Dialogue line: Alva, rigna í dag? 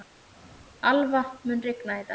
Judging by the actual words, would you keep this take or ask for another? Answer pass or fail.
fail